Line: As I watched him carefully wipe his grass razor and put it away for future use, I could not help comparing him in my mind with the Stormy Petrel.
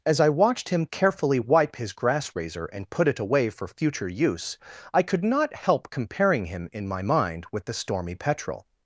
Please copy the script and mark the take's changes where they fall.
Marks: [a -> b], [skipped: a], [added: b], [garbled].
As I watched him carefully wipe his grass razor and put it away for future use, I could not help comparing him in my mind with the Stormy Petrel.